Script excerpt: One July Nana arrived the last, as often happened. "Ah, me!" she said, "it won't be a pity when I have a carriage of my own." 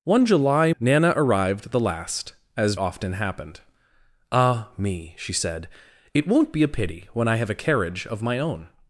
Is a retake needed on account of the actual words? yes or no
no